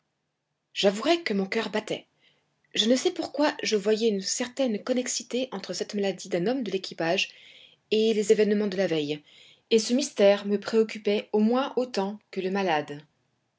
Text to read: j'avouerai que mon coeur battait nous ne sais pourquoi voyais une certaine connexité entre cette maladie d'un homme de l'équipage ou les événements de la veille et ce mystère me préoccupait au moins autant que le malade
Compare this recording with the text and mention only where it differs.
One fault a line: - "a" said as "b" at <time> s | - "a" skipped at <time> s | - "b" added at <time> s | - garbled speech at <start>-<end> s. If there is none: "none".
- "nous" said as "je" at 2.7 s
- "je" added at 3.6 s
- "ou" said as "et" at 7.9 s